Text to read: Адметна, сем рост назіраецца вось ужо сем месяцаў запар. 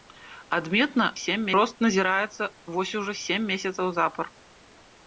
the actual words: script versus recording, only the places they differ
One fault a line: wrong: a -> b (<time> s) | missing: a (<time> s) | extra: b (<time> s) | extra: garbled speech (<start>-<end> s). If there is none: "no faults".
no faults